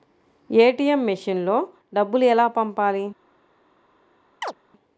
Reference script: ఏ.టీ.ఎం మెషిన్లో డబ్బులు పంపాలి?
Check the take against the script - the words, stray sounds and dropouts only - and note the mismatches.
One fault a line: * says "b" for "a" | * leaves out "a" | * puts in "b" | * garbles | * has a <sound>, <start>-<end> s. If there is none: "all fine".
* puts in "ఎలా"
* has a chirp, 4.4-4.5 s